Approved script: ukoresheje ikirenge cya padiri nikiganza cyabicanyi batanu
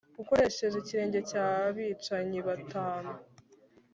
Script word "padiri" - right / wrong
wrong